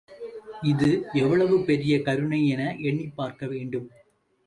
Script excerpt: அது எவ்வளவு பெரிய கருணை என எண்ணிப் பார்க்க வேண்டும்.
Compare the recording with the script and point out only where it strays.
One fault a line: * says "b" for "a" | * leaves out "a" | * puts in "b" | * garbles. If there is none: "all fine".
* says "இது" for "அது"